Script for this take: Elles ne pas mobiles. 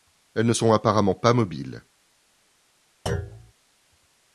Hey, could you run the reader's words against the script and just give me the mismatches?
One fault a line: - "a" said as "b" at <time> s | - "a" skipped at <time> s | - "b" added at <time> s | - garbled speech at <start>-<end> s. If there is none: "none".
- "sont apparemment" added at 0.5 s